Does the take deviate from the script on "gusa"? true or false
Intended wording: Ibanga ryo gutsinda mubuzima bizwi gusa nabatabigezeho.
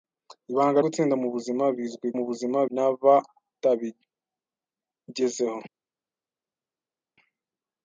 true